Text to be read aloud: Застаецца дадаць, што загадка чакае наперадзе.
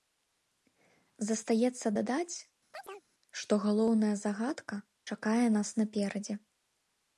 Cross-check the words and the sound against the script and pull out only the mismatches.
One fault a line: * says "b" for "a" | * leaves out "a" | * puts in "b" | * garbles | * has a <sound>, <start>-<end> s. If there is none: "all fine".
* has a chirp, 2.7-3.0 s
* puts in "галоўная"
* puts in "нас"